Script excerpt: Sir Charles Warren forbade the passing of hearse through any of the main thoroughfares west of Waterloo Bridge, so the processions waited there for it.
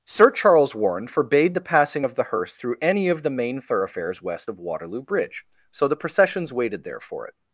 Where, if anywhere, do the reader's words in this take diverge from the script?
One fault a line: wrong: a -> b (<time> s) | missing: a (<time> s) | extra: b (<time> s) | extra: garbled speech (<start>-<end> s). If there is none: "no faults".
extra: the (2.1 s)